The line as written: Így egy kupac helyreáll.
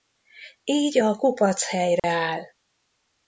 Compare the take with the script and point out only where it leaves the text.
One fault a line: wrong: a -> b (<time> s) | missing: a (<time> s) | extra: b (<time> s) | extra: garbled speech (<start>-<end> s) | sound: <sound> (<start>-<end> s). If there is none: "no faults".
wrong: egy -> a (1.0 s)
sound: dropout (2.0-2.0 s)